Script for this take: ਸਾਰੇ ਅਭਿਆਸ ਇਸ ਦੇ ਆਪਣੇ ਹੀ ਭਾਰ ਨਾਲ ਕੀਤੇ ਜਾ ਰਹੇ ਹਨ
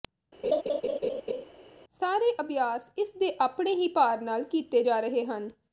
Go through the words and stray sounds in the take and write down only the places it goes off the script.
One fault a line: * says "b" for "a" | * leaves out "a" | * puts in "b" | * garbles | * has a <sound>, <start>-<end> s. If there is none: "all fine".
* has a laugh, 0.4-1.4 s